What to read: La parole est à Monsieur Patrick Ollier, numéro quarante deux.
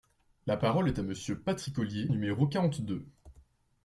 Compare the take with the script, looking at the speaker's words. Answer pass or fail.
pass